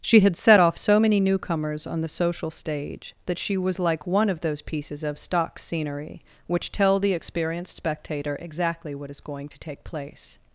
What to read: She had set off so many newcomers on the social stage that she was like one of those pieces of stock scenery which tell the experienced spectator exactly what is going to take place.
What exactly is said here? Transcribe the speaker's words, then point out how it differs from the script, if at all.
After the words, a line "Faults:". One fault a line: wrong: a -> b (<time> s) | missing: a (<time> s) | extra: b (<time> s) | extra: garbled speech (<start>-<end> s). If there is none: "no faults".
She had set off so many newcomers on the social stage that she was like one of those pieces of stock scenery which tell the experienced spectator exactly what is going to take place.
Faults:
no faults